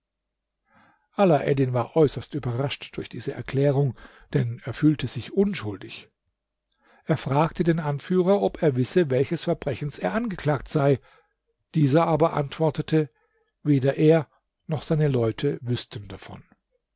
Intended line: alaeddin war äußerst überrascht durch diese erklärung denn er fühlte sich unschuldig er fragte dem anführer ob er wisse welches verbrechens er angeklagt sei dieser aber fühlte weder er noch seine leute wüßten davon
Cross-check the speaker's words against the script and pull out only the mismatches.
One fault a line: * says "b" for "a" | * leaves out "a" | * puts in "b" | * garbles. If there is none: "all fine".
* says "den" for "dem"
* says "antwortete" for "fühlte"